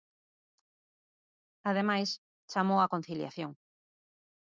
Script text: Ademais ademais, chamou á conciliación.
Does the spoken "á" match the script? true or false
true